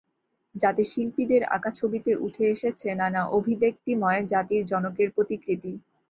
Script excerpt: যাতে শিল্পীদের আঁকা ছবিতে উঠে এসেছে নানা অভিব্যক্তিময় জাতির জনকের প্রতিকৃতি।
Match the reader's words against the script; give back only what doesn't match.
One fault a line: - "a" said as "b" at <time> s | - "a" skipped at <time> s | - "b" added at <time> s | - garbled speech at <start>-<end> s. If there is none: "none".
none